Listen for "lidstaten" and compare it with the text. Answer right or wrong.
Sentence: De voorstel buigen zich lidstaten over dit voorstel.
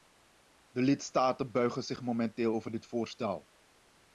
wrong